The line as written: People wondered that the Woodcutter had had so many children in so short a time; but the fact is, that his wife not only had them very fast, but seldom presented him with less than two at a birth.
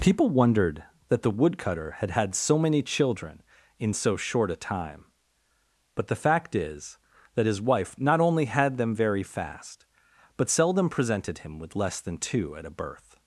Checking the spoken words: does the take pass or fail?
pass